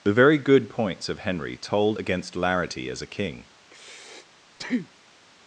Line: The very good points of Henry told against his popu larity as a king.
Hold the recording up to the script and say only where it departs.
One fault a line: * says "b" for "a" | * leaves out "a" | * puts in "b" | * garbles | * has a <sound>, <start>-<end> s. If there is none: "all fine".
* leaves out "his popu"
* has a breath, 3.6-5.2 s